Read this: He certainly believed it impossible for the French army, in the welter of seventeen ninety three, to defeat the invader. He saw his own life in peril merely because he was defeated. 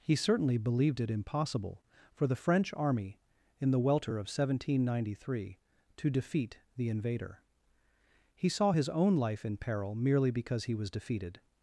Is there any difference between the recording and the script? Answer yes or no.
no